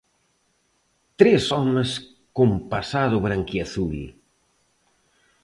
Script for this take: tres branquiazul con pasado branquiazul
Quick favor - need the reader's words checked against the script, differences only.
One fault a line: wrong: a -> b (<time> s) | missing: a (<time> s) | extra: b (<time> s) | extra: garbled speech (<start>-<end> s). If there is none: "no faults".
wrong: branquiazul -> homes (1.5 s)